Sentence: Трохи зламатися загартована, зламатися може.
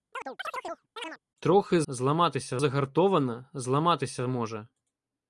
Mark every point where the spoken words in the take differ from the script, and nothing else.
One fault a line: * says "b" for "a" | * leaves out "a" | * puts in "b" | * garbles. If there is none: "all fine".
all fine